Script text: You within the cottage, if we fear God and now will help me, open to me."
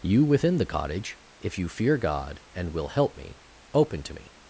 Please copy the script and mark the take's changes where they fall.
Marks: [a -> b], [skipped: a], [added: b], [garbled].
You within the cottage, if [we -> you] fear God and [skipped: now] will help me, open to me."